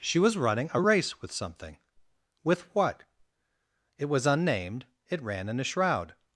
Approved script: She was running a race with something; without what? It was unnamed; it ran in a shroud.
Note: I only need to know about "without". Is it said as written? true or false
false